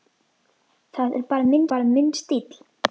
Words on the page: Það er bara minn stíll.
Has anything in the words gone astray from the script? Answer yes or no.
yes